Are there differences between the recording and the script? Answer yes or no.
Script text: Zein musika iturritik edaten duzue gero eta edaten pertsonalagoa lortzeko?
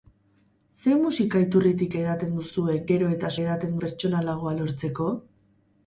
no